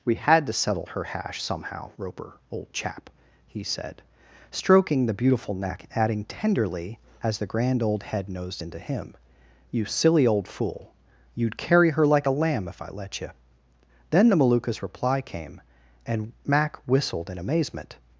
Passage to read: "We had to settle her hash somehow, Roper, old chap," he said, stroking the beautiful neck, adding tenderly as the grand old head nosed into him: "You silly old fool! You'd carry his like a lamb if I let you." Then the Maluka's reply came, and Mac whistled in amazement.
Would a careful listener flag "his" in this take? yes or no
yes